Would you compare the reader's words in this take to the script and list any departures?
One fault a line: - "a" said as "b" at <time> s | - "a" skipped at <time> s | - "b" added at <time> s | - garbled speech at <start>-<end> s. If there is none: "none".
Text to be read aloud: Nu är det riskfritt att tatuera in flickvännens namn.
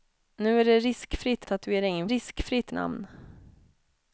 - "att" skipped at 1.4 s
- "flickvännens" said as "riskfritt" at 2.1 s